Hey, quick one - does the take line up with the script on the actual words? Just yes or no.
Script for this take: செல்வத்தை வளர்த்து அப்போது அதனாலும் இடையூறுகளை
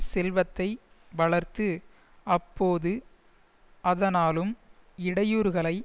yes